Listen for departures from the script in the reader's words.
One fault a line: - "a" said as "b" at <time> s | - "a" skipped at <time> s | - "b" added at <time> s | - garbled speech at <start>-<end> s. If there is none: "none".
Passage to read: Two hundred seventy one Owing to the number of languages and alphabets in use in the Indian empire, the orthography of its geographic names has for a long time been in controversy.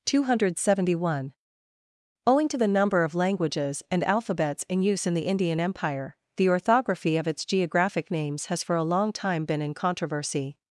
none